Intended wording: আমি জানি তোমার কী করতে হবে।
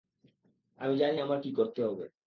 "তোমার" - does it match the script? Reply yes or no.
no